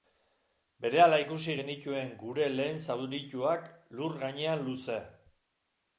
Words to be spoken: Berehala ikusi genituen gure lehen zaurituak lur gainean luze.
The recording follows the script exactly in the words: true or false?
true